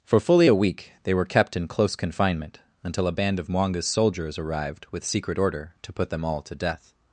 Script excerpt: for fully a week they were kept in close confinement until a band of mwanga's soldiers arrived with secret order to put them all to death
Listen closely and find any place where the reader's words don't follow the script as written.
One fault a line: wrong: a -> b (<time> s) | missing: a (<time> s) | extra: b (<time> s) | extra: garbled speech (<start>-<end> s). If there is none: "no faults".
no faults